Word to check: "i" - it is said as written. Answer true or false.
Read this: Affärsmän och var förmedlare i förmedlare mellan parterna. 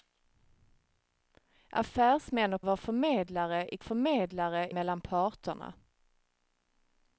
true